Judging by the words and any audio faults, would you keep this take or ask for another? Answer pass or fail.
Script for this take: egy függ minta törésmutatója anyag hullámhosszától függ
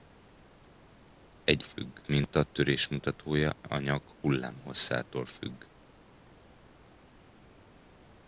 pass